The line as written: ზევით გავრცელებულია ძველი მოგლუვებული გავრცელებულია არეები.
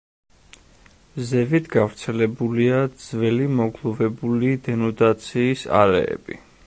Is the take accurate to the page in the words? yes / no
no